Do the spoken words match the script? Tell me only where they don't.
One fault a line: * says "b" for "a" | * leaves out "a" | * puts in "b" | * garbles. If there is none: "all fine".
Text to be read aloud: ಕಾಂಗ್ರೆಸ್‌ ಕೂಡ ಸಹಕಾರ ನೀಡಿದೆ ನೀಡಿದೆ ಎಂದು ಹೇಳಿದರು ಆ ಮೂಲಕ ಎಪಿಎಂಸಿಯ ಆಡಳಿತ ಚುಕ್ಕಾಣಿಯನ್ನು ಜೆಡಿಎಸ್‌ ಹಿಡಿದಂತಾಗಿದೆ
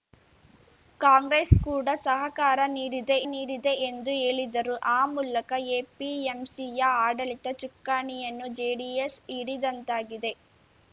all fine